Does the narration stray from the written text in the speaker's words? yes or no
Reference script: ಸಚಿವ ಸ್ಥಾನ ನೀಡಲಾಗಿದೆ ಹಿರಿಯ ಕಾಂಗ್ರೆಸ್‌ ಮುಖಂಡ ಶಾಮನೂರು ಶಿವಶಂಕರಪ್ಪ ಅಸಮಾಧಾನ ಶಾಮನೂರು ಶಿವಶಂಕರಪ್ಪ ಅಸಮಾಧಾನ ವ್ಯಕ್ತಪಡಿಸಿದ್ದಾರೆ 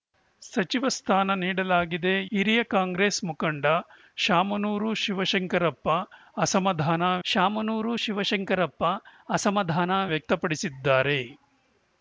no